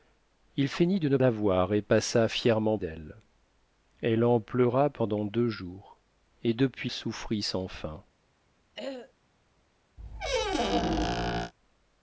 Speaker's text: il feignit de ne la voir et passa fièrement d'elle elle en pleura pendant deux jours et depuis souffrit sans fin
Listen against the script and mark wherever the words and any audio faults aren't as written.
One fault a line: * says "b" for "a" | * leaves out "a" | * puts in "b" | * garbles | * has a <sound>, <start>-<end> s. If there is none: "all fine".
* has a throat clearing, 8.7-9.1 s
* has a squeak, 10.0-11.5 s